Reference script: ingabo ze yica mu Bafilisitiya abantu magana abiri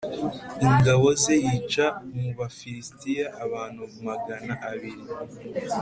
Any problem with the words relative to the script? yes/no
no